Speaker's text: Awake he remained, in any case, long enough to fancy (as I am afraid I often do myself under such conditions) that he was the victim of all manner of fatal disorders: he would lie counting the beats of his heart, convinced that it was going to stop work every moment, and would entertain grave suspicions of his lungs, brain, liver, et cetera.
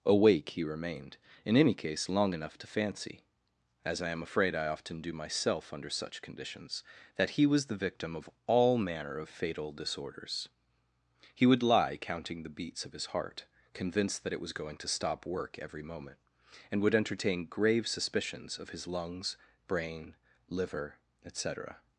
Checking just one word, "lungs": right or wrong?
right